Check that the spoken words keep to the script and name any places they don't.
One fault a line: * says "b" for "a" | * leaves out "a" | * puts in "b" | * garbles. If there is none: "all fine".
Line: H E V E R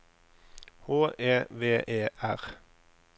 all fine